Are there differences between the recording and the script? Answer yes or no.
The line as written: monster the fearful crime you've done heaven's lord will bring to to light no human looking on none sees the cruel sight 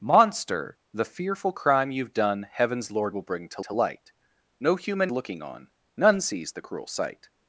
no